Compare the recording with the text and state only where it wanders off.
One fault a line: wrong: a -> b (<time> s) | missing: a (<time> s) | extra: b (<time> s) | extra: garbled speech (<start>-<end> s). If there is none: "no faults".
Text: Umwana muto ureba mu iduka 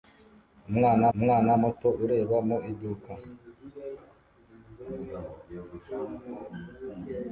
extra: umwana (1.1 s)